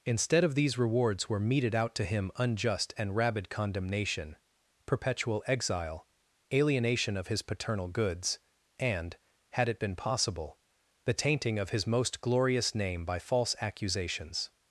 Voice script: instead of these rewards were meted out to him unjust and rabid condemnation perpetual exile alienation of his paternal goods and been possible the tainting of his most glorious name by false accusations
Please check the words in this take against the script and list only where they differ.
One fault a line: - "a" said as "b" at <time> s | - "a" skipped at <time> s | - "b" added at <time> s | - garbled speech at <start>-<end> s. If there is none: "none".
- "had it" added at 9.5 s